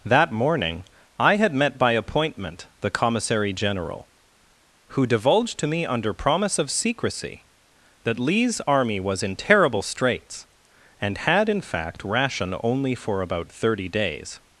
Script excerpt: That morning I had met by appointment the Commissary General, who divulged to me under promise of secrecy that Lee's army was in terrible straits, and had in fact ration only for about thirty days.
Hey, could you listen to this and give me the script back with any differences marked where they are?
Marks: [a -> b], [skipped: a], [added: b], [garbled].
That morning I had met by appointment the Commissary General, who divulged to me under promise of secrecy that Lee's army was in terrible straits, and had in fact ration only for about thirty days.